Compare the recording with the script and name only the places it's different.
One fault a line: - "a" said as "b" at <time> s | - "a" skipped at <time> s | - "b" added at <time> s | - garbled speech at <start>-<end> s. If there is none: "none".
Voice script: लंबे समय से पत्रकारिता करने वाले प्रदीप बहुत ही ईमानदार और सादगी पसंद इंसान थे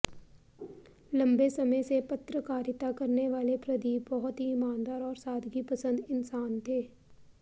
none